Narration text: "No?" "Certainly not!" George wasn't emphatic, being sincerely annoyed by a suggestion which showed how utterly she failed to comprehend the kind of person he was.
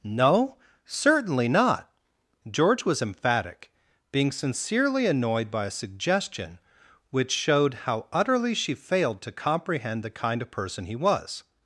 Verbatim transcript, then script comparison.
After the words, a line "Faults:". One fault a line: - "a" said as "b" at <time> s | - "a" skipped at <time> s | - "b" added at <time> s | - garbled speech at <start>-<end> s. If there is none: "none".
"No?" "Certainly not!" George was emphatic, being sincerely annoyed by a suggestion which showed how utterly she failed to comprehend the kind of person he was.
Faults:
- "wasn't" said as "was" at 2.9 s